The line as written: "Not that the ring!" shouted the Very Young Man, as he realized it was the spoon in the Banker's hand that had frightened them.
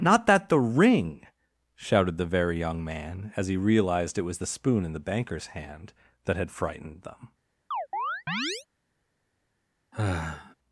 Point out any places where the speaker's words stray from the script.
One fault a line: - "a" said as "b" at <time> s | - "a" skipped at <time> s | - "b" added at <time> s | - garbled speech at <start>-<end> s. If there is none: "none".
none